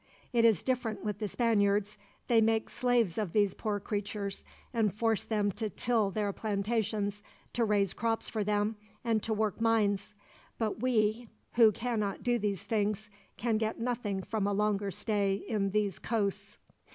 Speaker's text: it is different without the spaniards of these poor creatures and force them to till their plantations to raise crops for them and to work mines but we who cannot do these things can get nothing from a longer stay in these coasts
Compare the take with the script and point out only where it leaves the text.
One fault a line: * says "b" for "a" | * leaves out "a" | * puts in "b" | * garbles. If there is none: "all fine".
* says "with" for "without"
* puts in "they make slaves"